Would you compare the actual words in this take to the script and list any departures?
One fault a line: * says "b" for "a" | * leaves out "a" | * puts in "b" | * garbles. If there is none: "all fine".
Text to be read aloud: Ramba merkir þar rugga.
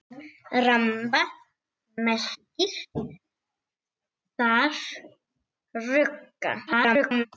* garbles